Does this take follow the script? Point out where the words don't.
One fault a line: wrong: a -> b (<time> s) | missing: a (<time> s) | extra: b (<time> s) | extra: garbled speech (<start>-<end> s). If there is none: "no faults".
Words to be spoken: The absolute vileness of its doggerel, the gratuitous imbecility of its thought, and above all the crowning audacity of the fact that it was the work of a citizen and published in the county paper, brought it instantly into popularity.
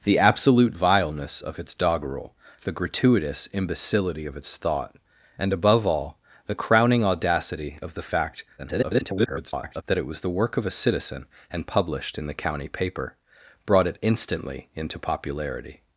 extra: garbled speech (8.6-9.8 s)